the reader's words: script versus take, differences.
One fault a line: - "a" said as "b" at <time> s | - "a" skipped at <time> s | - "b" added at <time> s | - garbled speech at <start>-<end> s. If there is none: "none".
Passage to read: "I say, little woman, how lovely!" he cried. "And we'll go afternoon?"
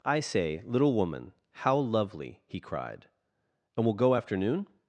none